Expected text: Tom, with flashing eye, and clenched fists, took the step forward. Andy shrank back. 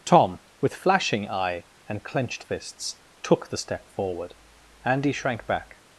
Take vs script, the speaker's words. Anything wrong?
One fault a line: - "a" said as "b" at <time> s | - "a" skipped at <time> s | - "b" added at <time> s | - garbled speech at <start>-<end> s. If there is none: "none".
none